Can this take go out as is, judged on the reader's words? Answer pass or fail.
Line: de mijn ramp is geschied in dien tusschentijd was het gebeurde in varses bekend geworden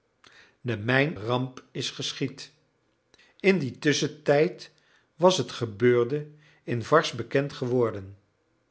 pass